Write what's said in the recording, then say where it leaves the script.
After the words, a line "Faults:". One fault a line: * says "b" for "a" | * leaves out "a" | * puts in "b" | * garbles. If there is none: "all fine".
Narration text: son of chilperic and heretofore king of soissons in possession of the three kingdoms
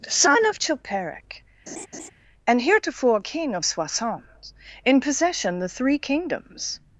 son of chilperic and heretofore king of soissons in possession the three kingdoms
Faults:
* leaves out "of"